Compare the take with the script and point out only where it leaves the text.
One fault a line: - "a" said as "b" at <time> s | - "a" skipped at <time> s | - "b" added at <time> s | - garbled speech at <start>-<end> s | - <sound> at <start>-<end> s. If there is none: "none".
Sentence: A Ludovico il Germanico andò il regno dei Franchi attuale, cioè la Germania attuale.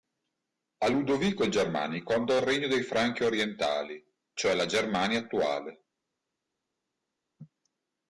- "attuale" said as "orientali" at 3.2 s